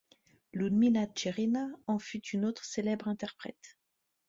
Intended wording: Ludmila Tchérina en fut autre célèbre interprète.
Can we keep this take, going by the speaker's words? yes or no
no